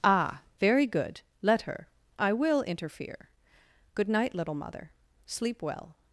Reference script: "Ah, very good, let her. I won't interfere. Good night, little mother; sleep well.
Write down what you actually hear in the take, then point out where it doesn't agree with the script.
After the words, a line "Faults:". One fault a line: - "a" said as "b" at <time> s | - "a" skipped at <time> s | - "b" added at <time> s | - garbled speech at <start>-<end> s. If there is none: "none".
"Ah, very good, let her. I will interfere. Good night, little mother; sleep well.
Faults:
- "won't" said as "will" at 2.3 s